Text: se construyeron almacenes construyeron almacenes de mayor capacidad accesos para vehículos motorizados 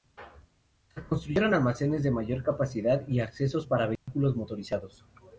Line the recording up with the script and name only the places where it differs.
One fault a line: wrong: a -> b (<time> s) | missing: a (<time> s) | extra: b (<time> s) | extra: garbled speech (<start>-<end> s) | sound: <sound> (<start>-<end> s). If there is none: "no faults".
missing: construyeron almacenes (2.0 s)
extra: y (3.1 s)
sound: dropout (4.0-4.1 s)